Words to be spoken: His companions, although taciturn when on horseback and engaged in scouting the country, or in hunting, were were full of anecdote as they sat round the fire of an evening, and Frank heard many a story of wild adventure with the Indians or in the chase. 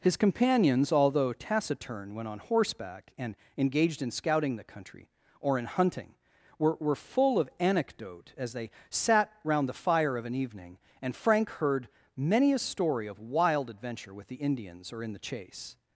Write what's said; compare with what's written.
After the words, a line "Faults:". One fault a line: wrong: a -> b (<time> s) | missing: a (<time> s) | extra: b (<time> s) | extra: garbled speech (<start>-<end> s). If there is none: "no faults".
His companions, although taciturn when on horseback and engaged in scouting the country, or in hunting, were were full of anecdote as they sat round the fire of an evening, and Frank heard many a story of wild adventure with the Indians or in the chase.
Faults:
no faults